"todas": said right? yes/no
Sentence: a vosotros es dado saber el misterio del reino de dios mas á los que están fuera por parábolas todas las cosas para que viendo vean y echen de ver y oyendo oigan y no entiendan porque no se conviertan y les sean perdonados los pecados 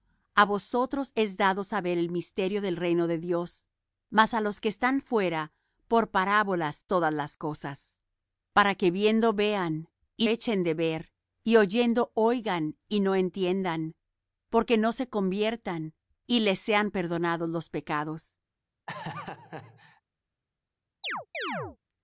yes